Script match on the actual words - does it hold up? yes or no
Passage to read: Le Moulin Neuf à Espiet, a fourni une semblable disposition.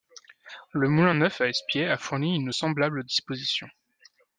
yes